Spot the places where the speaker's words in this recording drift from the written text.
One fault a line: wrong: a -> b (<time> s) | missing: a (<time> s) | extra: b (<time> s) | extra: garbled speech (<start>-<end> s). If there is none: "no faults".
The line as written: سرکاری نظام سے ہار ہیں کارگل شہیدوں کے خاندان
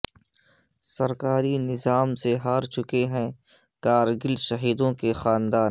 extra: چکے (2.7 s)